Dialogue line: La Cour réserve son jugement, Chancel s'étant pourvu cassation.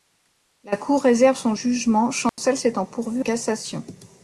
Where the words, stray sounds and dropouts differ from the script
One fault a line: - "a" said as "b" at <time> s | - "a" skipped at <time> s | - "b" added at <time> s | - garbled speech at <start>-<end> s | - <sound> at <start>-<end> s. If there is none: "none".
- dropout at 2.3-2.4 s